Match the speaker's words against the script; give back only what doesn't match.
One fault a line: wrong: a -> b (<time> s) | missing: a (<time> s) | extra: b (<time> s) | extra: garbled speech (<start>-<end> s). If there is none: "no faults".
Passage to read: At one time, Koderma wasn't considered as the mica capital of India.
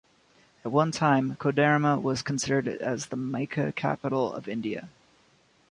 wrong: wasn't -> was (2.0 s)